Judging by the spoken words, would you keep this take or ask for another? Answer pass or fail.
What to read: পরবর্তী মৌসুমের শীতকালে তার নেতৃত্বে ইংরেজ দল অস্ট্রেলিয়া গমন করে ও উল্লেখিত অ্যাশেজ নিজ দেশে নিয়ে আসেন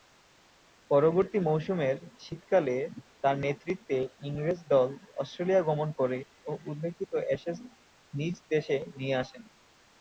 pass